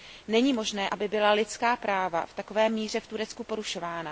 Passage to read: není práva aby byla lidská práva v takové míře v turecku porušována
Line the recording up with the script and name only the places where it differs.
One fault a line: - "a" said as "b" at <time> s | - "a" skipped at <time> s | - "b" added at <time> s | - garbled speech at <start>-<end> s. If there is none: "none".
- "práva" said as "možné" at 0.5 s